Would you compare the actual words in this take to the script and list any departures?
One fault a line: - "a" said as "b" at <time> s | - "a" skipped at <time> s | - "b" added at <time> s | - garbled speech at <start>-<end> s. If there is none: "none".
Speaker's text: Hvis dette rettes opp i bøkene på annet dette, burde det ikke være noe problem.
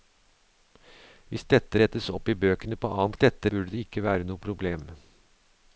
none